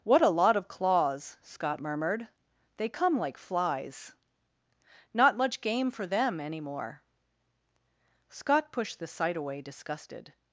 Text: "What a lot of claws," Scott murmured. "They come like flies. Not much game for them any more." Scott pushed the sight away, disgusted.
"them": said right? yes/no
yes